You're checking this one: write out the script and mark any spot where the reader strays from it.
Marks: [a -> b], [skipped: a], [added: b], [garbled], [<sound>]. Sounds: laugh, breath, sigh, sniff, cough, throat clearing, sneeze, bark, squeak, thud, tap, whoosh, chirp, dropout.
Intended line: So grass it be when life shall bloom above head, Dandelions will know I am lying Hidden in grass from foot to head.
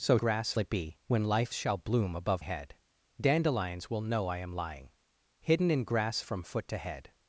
So grass it be when life shall bloom above head, Dandelions will know I am lying Hidden in grass from foot to head.